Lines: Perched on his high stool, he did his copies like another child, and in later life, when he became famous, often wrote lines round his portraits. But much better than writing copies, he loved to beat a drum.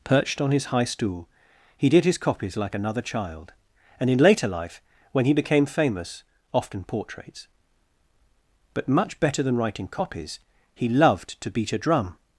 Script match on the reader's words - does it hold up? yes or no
no